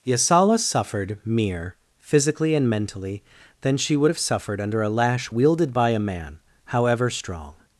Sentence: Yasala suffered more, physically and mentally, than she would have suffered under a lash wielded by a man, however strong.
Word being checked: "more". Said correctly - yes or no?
no